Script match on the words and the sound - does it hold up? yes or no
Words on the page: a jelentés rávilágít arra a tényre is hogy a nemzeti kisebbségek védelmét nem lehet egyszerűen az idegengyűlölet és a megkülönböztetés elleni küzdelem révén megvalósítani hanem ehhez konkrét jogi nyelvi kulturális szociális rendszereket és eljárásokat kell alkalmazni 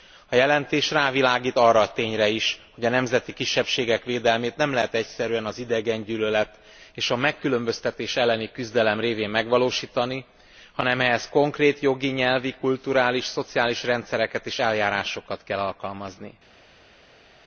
yes